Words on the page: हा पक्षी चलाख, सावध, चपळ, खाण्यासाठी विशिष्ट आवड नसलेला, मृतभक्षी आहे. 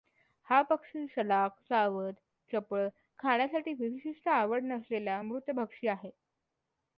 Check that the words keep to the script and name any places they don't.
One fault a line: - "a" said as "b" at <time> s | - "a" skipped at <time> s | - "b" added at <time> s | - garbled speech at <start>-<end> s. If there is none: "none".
none